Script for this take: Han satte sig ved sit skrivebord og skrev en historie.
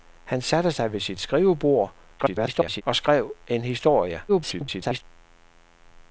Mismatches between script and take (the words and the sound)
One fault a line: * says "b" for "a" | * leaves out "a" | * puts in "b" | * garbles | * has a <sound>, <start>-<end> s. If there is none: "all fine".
* garbles
* garbles